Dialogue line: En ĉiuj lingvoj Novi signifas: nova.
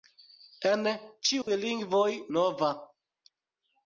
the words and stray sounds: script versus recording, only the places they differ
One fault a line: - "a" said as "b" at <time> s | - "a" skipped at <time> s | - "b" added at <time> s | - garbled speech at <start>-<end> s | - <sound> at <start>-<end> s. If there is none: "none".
- dropout at 1.4-1.5 s
- "Novi signifas" skipped at 2.0 s